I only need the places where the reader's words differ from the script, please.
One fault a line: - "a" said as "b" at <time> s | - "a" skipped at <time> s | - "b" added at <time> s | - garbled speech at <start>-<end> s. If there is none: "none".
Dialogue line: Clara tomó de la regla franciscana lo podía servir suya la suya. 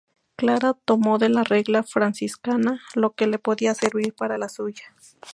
- "que le" added at 3.1 s
- "suya" said as "para" at 4.2 s